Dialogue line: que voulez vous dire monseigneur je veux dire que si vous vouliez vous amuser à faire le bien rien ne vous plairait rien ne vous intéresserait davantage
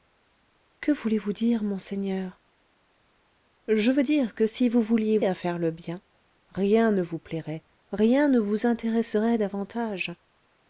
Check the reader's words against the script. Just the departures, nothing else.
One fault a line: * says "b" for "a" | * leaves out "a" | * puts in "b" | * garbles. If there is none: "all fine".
* leaves out "vous amuser"